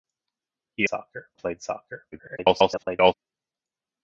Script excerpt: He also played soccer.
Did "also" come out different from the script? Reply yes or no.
yes